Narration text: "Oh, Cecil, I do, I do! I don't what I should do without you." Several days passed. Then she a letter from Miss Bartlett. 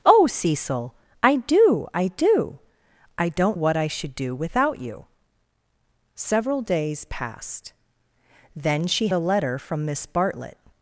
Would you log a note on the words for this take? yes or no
no